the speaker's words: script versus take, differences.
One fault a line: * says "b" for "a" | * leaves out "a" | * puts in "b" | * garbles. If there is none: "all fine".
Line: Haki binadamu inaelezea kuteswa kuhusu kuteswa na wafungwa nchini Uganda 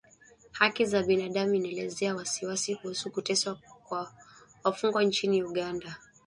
* puts in "za"
* says "wasiwasi" for "kuteswa"
* says "kwa" for "na"